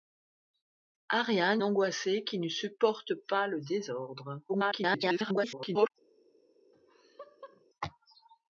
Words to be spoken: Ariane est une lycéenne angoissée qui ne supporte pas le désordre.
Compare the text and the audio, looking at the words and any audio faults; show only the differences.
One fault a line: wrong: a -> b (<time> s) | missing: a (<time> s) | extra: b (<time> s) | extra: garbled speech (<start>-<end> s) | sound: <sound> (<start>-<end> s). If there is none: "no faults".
missing: est une lycéenne (1.6 s)
extra: garbled speech (4.5-5.9 s)
sound: laugh (6.7-7.6 s)